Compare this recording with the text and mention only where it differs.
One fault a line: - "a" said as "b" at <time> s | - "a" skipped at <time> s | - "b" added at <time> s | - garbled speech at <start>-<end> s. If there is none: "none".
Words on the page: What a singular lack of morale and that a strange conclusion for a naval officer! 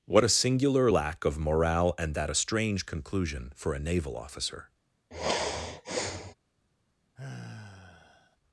none